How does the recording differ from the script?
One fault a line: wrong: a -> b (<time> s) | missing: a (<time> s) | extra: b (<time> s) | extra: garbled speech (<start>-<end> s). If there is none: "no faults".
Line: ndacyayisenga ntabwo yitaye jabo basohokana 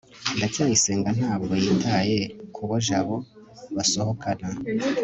extra: kubo (2.5 s)